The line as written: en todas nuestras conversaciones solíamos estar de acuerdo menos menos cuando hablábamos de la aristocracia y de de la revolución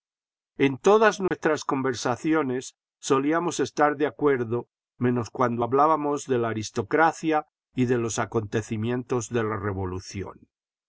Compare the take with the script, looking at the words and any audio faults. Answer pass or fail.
fail